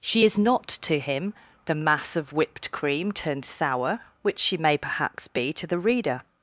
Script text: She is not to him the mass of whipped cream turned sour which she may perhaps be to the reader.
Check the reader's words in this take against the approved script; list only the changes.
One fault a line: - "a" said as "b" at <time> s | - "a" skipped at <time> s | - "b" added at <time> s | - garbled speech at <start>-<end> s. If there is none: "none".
none